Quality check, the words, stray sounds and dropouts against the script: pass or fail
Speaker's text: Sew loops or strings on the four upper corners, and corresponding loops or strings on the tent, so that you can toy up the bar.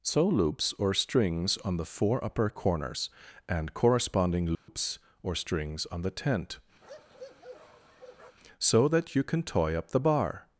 fail